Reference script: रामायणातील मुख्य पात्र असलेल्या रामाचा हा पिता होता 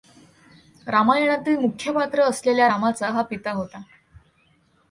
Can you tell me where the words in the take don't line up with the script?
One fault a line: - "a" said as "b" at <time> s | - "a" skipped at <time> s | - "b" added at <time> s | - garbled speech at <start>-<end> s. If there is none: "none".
none